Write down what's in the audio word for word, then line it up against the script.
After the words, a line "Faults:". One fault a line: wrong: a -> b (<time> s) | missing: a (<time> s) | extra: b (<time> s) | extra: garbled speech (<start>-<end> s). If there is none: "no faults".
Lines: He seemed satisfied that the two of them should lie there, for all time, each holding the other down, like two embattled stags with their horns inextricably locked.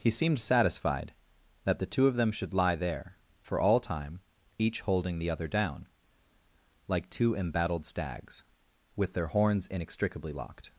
He seemed satisfied that the two of them should lie there, for all time, each holding the other down, like two embattled stags with their horns inextricably locked.
Faults:
no faults